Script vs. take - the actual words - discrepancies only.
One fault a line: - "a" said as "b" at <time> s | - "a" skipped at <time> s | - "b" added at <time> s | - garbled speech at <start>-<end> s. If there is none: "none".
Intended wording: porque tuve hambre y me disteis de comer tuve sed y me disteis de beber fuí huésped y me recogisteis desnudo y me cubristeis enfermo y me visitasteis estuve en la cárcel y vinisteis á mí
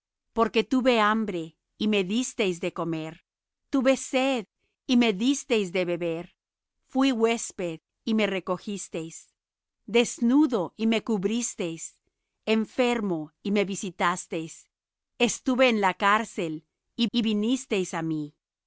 - "y" added at 17.1 s